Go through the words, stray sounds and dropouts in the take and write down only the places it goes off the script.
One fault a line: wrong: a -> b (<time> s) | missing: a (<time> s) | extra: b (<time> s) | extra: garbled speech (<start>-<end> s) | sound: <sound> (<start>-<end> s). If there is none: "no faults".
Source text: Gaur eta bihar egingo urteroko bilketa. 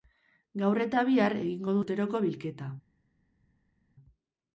no faults